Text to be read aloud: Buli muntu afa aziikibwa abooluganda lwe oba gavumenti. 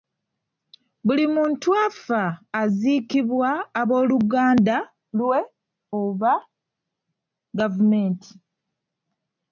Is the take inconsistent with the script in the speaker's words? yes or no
no